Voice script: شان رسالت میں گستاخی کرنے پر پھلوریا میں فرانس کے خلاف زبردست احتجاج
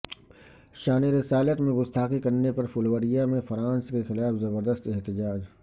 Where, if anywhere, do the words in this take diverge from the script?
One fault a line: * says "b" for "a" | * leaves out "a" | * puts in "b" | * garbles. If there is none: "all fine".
all fine